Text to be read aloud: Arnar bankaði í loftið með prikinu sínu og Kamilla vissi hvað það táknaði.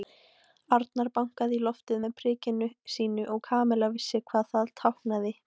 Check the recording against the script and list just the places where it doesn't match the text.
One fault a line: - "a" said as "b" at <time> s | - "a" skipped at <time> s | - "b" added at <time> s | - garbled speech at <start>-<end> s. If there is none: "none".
none